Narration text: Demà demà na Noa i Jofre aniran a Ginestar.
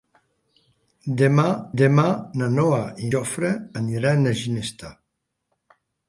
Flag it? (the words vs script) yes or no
no